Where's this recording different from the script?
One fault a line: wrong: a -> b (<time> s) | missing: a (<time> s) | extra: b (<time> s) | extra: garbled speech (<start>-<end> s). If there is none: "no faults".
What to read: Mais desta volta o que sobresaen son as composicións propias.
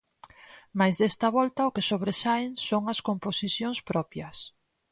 no faults